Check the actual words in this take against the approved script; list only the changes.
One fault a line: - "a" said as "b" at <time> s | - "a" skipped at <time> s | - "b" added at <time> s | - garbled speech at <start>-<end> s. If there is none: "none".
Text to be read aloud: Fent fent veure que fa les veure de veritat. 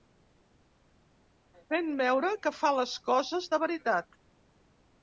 - "fent" skipped at 1.9 s
- "veure" said as "coses" at 3.1 s